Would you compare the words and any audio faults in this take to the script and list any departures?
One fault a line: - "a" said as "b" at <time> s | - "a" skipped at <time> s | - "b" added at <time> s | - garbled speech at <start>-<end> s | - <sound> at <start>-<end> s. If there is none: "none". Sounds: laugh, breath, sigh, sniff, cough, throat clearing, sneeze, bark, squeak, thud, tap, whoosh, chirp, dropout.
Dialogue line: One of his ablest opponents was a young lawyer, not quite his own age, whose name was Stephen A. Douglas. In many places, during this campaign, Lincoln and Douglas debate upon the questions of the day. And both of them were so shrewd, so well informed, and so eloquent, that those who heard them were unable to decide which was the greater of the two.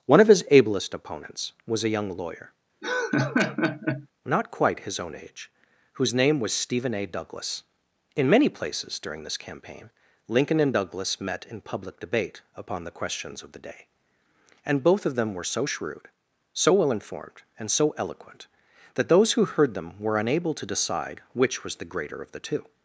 - laugh at 2.8-4.1 s
- "met in public" added at 11.2 s